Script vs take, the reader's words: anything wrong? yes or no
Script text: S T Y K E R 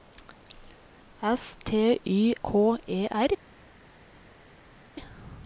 no